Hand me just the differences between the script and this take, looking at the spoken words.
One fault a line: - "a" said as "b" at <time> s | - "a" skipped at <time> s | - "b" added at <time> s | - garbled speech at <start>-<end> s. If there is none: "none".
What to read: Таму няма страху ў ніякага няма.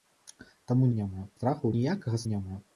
none